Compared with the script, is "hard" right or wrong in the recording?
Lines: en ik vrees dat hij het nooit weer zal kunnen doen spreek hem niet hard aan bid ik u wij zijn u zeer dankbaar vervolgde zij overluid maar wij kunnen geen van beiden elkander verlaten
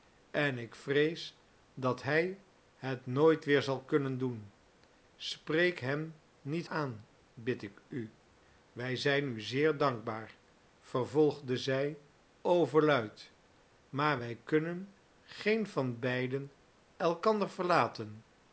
wrong